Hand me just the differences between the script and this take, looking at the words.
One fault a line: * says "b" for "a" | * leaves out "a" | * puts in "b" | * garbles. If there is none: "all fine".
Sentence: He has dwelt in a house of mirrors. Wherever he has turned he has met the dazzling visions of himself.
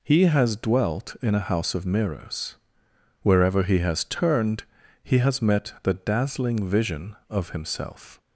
* says "vision" for "visions"